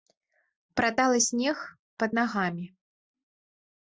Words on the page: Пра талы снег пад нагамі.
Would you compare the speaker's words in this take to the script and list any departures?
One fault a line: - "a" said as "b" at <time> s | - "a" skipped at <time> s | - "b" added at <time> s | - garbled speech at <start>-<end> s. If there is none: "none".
none